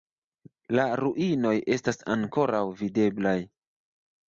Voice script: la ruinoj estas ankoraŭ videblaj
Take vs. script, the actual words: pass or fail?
pass